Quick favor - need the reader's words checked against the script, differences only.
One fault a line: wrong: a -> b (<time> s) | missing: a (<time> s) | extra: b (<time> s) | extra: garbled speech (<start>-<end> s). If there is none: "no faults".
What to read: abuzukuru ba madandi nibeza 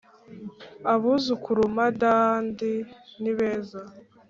missing: ba (1.6 s)